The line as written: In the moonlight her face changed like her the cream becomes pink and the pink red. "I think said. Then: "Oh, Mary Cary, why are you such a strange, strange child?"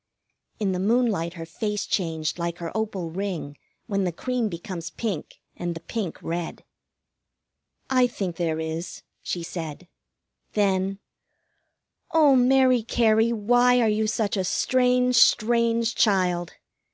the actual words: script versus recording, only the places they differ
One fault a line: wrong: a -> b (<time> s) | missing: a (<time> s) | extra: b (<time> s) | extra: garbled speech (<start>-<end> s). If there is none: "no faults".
extra: opal ring when (2.8 s)
extra: there is she (8.4 s)